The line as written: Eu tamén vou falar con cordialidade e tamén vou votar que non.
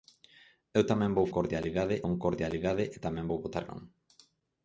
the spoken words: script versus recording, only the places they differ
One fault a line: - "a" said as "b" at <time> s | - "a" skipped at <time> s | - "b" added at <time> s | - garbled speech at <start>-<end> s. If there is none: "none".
- "falar" said as "cordialidade" at 1.3 s
- "que" skipped at 3.6 s